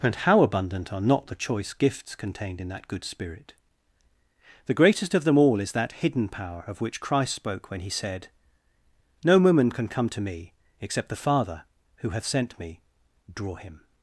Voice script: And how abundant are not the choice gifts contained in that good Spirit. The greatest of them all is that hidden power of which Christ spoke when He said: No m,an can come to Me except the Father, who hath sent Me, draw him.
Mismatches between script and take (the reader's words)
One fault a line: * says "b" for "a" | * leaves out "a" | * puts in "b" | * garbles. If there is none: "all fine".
* says "woman" for "m,an"